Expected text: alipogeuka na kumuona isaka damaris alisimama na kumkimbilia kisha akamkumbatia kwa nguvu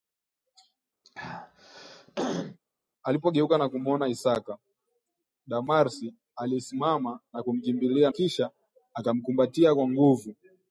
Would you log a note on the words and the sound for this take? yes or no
yes